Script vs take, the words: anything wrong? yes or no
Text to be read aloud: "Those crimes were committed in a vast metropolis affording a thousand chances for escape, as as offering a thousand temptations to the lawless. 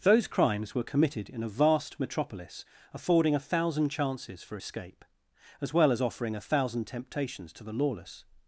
yes